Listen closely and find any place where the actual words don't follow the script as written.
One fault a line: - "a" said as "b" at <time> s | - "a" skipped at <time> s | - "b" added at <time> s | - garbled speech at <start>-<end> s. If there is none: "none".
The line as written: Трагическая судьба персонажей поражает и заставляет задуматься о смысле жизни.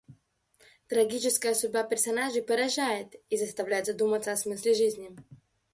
none